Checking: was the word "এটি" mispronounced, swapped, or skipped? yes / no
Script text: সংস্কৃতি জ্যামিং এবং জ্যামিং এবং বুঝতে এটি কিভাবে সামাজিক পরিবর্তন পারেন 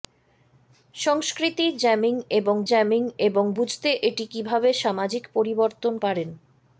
no